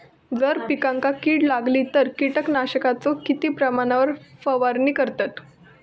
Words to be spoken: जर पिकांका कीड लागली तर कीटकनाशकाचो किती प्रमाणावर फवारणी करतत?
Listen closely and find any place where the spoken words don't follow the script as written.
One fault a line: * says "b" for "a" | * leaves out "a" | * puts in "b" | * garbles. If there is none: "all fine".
all fine